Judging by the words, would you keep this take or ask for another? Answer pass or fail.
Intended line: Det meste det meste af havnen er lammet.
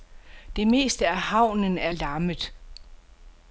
fail